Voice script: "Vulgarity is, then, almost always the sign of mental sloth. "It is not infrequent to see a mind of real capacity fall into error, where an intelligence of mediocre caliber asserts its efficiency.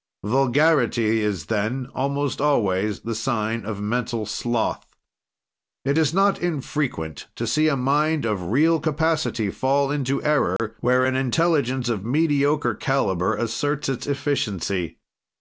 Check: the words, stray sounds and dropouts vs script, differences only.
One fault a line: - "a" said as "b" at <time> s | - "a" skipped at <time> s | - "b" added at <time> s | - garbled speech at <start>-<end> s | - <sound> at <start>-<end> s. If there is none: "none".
- dropout at 10.6-10.6 s